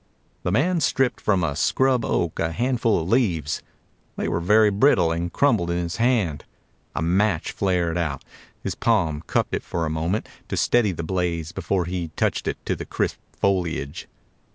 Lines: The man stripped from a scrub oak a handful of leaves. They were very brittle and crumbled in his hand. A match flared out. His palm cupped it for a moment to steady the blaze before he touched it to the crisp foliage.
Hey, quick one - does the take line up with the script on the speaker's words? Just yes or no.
yes